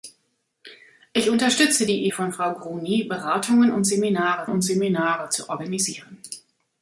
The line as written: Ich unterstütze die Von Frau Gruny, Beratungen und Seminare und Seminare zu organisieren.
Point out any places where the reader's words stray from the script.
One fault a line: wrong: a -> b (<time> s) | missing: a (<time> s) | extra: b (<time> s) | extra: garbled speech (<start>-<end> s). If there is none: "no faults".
no faults